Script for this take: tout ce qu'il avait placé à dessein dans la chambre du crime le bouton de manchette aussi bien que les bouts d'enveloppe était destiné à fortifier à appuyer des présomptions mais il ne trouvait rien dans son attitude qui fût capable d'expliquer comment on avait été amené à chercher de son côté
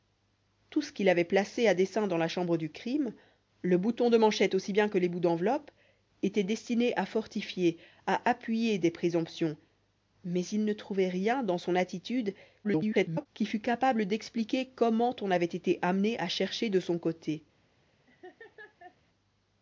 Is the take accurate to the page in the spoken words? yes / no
no